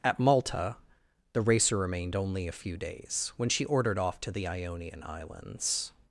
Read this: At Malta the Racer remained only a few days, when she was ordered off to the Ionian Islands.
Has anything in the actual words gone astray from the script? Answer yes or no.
yes